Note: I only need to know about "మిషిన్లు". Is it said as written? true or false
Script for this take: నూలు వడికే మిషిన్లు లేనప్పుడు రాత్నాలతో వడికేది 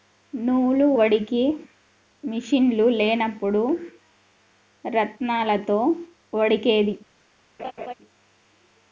true